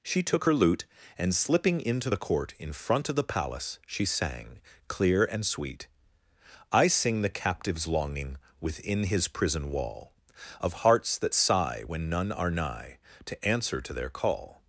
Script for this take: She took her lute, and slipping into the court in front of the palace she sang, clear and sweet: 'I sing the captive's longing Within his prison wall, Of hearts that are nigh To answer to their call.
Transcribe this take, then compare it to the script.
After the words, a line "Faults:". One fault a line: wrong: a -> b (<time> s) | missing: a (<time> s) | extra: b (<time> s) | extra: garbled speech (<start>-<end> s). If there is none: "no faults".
She took her lute, and slipping into the court in front of the palace she sang, clear and sweet: 'I sing the captive's longing Within his prison wall, Of hearts that sigh when none are nigh To answer to their call.
Faults:
extra: sigh when none (11.3 s)